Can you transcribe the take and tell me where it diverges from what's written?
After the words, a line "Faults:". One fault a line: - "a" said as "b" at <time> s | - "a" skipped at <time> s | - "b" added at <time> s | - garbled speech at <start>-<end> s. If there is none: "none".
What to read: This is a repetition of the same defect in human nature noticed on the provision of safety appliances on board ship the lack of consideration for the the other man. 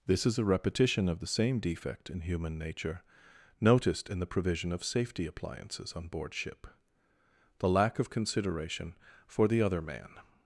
This is a repetition of the same defect in human nature noticed in the provision of safety appliances on board ship the lack of consideration for the other man.
Faults:
- "on" said as "in" at 4.1 s
- "the" skipped at 9.6 s